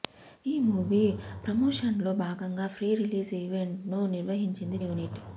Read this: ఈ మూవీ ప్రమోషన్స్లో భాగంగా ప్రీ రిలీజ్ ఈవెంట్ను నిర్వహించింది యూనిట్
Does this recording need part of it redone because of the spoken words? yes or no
no